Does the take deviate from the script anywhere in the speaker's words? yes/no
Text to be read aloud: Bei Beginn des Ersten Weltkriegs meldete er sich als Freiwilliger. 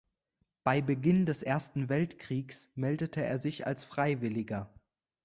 no